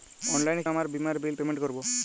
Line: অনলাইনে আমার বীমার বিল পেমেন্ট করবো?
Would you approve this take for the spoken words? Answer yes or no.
yes